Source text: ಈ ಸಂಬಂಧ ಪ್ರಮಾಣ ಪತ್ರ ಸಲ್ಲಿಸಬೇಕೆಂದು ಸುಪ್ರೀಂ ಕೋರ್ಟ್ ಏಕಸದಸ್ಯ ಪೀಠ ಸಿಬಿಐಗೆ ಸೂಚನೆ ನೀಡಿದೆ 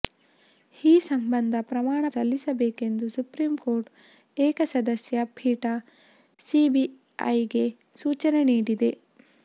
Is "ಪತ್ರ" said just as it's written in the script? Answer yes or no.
no